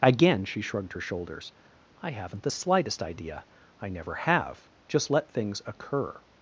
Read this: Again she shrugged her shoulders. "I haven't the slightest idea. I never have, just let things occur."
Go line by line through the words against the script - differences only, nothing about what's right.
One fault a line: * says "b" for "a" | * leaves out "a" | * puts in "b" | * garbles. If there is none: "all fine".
all fine